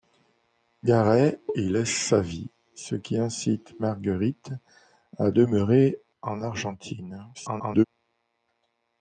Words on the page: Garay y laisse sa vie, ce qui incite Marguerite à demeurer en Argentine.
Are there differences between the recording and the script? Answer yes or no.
yes